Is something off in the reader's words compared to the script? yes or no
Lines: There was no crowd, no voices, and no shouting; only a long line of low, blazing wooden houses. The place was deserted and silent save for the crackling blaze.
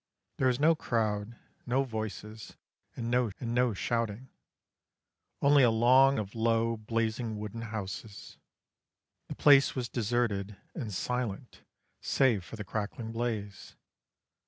yes